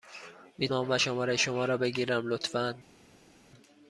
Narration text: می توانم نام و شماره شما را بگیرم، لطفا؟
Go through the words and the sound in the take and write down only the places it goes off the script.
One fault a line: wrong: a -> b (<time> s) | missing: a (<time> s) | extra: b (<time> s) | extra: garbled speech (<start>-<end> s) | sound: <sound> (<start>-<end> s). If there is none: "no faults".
missing: توانم (0.7 s)